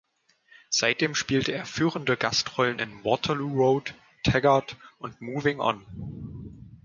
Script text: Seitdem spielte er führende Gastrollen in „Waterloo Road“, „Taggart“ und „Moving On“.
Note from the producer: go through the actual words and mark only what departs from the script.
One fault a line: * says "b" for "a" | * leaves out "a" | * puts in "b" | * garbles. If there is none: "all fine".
all fine